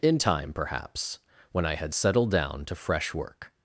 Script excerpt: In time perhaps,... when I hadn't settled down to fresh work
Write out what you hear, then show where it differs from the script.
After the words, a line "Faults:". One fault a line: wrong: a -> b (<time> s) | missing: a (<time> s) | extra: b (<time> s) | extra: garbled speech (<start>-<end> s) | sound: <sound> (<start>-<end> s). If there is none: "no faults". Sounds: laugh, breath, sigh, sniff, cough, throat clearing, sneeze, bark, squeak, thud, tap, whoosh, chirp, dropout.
In time perhaps,... when I had settled down to fresh work
Faults:
wrong: hadn't -> had (1.8 s)